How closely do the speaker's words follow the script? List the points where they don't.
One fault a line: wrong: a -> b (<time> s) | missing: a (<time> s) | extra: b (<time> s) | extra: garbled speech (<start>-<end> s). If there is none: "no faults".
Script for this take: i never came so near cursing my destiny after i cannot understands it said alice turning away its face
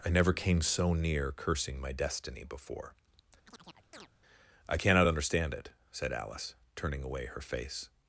wrong: after -> before (2.4 s)
wrong: understands -> understand (5.1 s)
wrong: its -> her (7.3 s)